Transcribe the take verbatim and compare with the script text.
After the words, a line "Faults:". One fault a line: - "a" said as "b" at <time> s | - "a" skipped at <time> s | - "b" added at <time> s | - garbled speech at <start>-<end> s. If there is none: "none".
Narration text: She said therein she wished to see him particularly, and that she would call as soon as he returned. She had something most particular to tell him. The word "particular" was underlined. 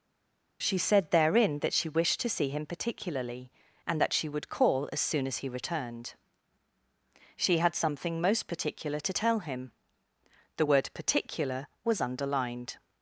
She said therein that she wished to see him particularly, and that she would call as soon as he returned. She had something most particular to tell him. The word "particular" was underlined.
Faults:
- "that" added at 1.6 s